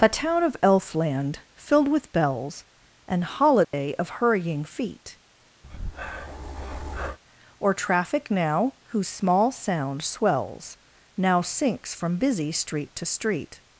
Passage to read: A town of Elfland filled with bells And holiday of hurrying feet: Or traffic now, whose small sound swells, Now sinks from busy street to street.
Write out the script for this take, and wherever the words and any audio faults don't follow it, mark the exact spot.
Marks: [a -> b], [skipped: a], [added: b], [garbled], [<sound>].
A town of Elfland filled with bells And holiday [dropout] of hurrying feet: [breath] Or traffic now, whose small sound swells, Now sinks from busy street to street.